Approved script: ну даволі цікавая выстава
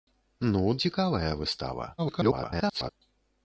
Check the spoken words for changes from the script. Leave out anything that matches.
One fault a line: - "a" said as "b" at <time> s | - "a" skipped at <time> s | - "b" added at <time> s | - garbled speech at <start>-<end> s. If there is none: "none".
- "даволі" skipped at 0.6 s
- garbled speech at 2.0-2.9 s